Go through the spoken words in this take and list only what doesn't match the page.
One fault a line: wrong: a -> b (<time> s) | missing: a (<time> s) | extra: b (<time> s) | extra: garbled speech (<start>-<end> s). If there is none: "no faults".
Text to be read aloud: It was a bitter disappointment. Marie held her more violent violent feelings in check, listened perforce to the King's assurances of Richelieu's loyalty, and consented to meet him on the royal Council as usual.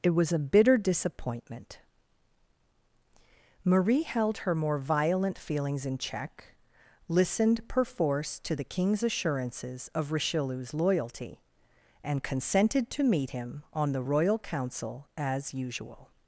missing: violent (5.4 s)